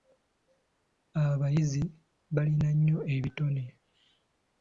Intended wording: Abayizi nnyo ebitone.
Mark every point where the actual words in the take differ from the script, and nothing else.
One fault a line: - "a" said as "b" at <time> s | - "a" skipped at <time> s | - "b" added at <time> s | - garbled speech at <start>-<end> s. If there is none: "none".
- "balina" added at 2.4 s